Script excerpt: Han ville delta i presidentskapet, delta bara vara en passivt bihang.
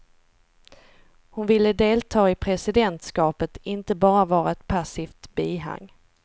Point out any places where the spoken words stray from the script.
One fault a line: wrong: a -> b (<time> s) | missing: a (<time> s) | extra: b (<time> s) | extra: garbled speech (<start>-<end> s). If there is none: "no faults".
wrong: Han -> Hon (1.3 s)
wrong: delta -> inte (3.6 s)
wrong: en -> ett (4.5 s)